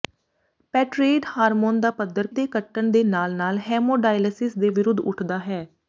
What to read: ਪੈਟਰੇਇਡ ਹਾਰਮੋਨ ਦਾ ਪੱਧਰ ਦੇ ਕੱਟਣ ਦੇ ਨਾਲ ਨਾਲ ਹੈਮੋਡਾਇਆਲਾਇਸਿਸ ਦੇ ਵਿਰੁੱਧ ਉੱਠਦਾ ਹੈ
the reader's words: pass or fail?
pass